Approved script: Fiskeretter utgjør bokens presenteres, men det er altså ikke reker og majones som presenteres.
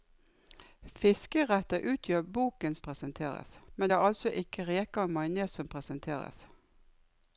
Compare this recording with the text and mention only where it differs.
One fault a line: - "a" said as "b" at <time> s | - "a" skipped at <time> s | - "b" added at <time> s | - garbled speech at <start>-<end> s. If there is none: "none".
none